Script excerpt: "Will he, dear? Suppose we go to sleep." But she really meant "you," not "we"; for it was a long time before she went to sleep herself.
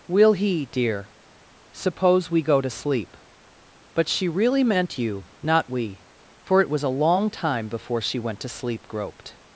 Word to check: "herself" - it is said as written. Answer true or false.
false